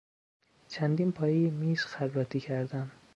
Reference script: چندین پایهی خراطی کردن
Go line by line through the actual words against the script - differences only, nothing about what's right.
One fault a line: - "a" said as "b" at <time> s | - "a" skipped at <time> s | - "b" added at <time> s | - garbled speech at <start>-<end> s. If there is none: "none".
- "میز" added at 1.5 s